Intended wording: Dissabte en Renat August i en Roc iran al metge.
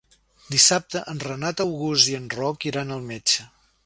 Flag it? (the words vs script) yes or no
no